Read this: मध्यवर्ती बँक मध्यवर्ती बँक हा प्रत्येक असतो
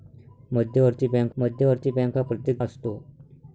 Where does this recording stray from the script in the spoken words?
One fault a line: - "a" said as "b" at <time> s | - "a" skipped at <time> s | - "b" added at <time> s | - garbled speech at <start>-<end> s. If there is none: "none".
none